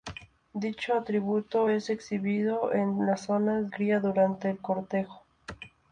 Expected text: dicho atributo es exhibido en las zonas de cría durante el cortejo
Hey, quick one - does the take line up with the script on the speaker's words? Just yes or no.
no